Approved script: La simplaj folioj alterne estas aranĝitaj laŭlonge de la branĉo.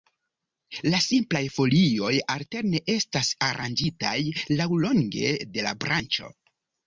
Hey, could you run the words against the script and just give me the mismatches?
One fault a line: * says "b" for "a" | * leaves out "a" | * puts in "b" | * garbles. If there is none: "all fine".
all fine